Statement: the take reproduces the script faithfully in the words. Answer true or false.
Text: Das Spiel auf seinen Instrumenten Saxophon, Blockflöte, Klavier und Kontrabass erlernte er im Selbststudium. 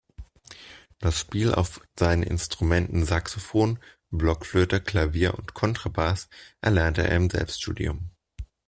true